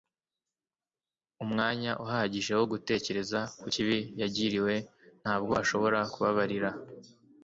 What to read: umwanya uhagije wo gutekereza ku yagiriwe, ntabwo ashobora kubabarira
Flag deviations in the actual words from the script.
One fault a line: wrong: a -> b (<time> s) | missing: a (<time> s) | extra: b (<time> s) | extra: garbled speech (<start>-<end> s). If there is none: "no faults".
extra: kibi (3.7 s)